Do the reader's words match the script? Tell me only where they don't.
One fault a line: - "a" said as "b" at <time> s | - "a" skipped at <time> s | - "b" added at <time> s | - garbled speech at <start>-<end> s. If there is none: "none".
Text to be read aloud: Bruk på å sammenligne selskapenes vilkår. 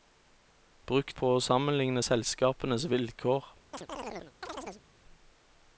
none